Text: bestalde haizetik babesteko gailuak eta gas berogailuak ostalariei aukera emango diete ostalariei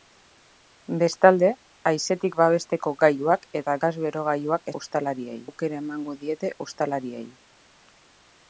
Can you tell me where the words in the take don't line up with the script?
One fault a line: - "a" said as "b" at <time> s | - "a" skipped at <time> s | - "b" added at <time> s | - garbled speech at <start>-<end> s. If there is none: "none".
none